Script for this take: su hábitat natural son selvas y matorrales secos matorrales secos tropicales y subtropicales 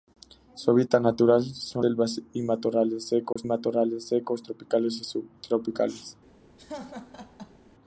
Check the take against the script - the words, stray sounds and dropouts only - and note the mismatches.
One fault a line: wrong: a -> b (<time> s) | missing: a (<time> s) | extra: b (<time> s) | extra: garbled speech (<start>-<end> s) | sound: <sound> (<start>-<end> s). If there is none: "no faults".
sound: dropout (3.3-3.4 s)
sound: laugh (6.6-7.6 s)